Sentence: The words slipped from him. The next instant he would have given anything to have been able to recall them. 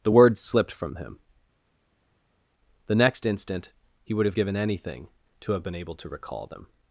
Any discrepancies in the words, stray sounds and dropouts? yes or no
no